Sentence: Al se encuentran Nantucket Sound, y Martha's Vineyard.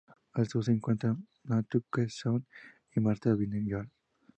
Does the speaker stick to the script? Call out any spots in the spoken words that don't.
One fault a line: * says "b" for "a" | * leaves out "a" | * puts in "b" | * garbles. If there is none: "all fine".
* puts in "sur"